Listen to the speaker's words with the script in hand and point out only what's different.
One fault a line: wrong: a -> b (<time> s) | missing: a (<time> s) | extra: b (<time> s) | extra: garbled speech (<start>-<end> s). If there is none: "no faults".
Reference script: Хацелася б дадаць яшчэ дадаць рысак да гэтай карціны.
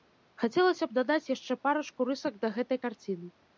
wrong: дадаць -> парачку (1.7 s)